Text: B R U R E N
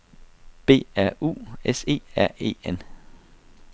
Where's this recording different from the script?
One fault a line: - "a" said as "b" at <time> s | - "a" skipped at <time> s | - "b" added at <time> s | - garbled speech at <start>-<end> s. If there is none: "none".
- "S E" added at 1.6 s